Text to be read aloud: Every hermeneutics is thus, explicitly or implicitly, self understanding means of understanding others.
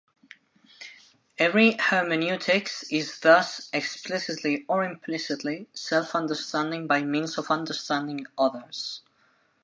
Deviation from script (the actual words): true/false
true